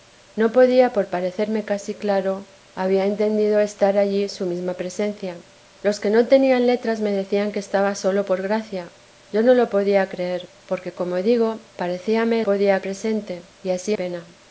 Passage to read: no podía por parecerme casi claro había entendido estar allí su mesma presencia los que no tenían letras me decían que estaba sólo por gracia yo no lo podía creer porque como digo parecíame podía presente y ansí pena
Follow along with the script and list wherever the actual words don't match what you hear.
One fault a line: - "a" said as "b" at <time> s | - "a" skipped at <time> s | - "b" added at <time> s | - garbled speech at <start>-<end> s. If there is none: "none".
none